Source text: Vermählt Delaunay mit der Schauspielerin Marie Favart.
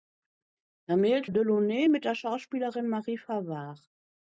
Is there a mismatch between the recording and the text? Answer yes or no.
no